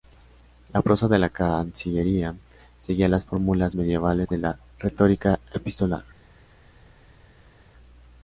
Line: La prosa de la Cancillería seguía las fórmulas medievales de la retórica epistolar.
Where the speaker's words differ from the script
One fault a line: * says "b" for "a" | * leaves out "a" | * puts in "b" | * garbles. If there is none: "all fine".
all fine